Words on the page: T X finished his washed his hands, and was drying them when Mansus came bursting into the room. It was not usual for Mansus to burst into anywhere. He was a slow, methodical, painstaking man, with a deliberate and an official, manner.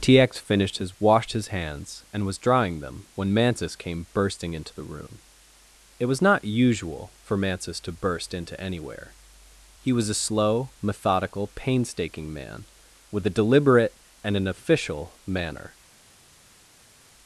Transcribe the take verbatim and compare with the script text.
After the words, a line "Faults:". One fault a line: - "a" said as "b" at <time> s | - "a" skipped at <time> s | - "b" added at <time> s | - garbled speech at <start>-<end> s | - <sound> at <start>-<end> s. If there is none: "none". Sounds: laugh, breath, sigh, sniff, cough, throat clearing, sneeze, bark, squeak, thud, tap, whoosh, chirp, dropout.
T X finished his washed his hands, and was drying them when Mansus came bursting into the room. It was not usual for Mansus to burst into anywhere. He was a slow, methodical, painstaking man, with a deliberate and an official, manner.
Faults:
none